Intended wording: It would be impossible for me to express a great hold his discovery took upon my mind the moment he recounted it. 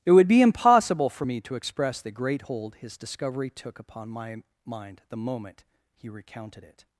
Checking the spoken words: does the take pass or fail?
fail